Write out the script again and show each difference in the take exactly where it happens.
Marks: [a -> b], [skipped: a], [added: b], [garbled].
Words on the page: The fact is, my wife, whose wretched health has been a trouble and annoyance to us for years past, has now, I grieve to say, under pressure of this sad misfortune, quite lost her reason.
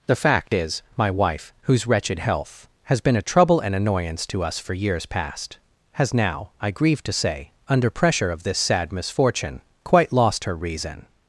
The fact is, my wife, whose wretched health has been a trouble and annoyance to us for years past, has now, I grieve to say, under pressure of this sad misfortune, quite lost her reason.